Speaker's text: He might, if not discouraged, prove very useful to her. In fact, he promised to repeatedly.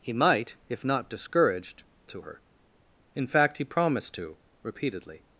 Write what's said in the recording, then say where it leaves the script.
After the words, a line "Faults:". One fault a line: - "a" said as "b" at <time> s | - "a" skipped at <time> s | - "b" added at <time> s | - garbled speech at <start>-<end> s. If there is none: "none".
He might, if not discouraged, to her. In fact, he promised to repeatedly.
Faults:
- "prove very useful" skipped at 1.8 s